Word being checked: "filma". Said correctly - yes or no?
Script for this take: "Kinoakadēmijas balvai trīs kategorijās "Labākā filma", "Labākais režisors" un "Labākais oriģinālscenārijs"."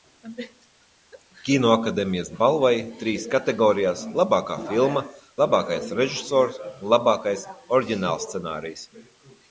yes